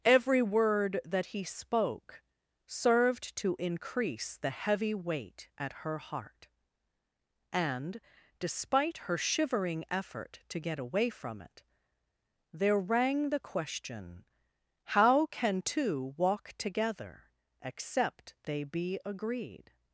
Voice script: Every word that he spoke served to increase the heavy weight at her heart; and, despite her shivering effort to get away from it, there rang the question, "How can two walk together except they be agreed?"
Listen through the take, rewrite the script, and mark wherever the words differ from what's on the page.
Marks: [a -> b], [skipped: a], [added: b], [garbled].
Every word that he spoke served to increase the heavy weight at her heart; and, despite her shivering effort to get away from it, there rang the question, "How can two walk together except they be agreed?"